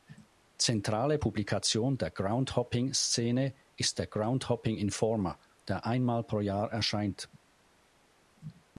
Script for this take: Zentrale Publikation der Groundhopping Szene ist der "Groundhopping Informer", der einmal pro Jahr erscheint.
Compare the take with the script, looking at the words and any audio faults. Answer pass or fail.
pass